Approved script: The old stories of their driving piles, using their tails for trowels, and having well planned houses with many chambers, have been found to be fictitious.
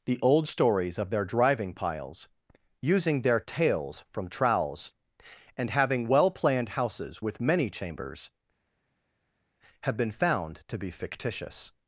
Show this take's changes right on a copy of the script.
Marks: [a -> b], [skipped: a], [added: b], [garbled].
The old stories of their driving piles, using their tails [for -> from] trowels, and having well planned houses with many chambers, have been found to be fictitious.